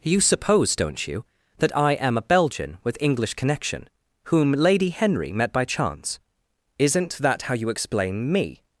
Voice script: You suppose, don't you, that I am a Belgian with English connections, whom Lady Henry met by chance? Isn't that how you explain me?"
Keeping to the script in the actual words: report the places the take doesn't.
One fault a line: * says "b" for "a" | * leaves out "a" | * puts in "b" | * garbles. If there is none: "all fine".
* says "connection" for "connections"